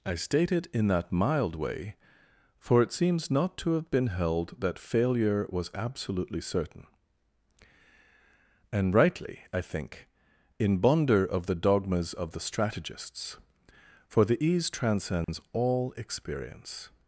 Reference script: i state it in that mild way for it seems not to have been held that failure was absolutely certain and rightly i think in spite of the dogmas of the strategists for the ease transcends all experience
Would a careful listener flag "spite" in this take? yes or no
yes